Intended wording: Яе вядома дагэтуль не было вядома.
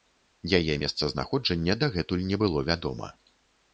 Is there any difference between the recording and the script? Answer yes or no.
yes